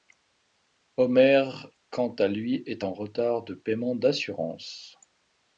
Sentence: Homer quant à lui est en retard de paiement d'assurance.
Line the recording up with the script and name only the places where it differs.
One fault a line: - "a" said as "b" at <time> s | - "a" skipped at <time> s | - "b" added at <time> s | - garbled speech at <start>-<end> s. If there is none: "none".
none